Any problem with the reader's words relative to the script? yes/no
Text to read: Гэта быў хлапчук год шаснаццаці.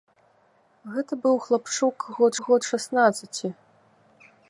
yes